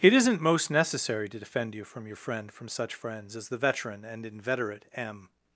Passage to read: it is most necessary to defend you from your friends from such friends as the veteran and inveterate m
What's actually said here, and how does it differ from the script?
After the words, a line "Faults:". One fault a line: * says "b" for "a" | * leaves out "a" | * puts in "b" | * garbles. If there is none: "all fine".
it isn't most necessary to defend you from your friend from such friends as the veteran and inveterate m
Faults:
* says "isn't" for "is"
* says "friend" for "friends"